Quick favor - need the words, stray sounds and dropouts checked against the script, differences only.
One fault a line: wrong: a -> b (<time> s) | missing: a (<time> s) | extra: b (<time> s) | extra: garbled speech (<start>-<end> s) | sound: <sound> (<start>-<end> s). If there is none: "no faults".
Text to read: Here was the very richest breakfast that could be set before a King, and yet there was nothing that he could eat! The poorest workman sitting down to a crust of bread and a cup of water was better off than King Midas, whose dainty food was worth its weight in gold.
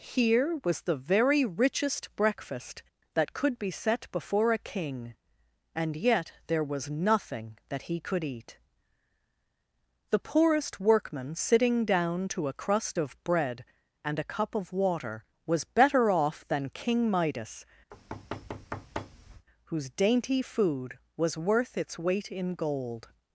sound: thud (17.9-19.5 s)